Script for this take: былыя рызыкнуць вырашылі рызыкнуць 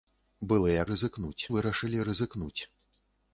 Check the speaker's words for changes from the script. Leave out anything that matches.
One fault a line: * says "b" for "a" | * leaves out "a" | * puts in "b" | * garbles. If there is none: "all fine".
all fine